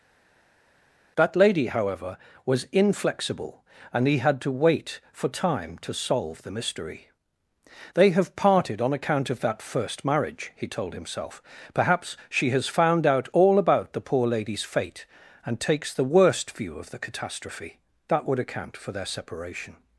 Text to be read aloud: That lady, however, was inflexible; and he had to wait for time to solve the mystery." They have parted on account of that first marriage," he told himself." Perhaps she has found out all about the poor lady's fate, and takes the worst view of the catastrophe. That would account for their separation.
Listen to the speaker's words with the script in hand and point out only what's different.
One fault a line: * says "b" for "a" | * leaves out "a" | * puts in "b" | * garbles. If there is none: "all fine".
all fine